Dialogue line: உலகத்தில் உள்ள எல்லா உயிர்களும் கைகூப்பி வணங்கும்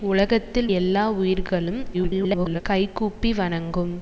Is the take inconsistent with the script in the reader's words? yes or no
yes